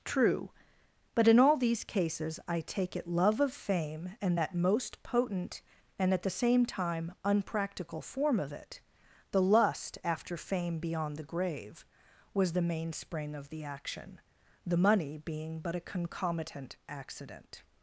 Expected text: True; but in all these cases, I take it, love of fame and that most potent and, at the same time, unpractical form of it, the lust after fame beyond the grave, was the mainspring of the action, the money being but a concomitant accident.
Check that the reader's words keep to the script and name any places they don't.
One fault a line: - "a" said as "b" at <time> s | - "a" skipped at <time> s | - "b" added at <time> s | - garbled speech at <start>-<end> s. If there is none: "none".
none